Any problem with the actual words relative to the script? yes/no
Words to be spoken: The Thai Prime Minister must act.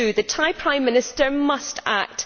no